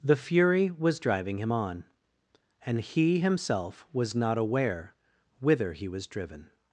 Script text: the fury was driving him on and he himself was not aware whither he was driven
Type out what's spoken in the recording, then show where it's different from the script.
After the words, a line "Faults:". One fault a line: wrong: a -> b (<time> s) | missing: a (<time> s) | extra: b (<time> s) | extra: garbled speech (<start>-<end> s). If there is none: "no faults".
the fury was driving him on and he himself was not aware whither he was driven
Faults:
no faults